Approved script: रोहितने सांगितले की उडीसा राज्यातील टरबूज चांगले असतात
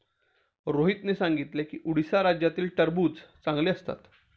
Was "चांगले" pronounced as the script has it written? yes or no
yes